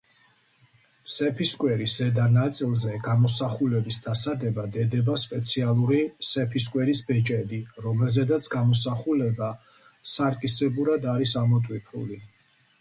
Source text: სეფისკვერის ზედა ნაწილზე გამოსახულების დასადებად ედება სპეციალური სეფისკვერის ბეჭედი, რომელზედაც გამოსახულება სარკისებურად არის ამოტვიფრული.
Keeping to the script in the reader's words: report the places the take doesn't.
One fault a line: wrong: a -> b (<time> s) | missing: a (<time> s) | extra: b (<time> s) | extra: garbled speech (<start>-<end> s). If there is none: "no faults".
no faults